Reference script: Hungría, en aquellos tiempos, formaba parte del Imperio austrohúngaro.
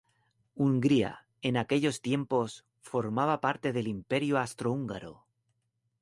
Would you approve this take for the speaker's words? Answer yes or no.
yes